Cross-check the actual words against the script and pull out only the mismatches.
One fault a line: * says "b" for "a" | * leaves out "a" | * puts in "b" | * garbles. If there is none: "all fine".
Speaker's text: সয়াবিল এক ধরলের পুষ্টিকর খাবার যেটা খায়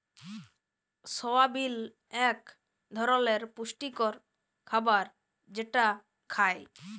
all fine